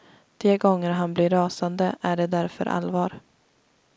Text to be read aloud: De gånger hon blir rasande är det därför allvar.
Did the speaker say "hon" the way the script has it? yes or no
no